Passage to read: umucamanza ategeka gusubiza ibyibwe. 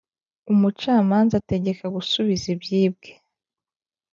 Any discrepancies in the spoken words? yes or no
no